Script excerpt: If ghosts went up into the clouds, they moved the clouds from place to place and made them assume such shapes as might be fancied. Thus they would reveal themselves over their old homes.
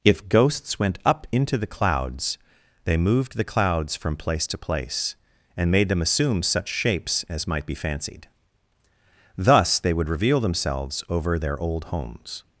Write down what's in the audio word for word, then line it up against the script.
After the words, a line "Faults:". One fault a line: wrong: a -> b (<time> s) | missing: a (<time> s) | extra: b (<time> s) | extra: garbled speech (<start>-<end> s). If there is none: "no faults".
If ghosts went up into the clouds, they moved the clouds from place to place and made them assume such shapes as might be fancied. Thus they would reveal themselves over their old homes.
Faults:
no faults